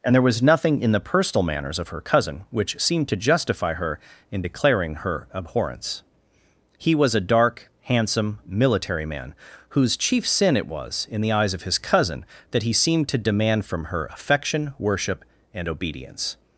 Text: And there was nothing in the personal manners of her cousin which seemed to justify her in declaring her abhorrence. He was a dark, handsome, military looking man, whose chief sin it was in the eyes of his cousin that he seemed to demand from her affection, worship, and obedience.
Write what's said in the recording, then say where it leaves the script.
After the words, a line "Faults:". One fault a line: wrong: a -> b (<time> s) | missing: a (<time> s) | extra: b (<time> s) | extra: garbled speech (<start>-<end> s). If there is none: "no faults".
And there was nothing in the personal manners of her cousin which seemed to justify her in declaring her abhorrence. He was a dark, handsome, military man, whose chief sin it was in the eyes of his cousin that he seemed to demand from her affection, worship, and obedience.
Faults:
missing: looking (9.0 s)